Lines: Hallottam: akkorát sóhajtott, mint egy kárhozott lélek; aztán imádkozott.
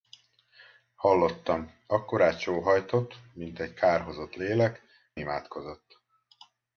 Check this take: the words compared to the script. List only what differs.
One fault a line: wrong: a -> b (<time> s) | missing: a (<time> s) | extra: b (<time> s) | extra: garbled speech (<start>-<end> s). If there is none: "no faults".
missing: aztán (4.8 s)